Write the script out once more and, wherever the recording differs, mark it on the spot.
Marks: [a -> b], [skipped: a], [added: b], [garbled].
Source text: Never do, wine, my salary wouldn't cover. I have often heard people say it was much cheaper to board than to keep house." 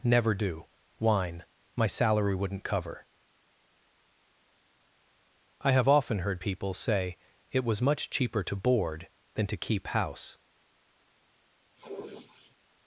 Never do, wine, my salary wouldn't cover. I have often heard people say it was much cheaper to board than to keep house."